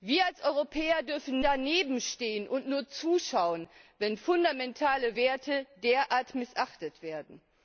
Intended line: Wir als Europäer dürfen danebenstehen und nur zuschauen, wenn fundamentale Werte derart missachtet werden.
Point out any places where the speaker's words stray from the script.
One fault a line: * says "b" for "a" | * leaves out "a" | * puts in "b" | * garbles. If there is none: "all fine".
all fine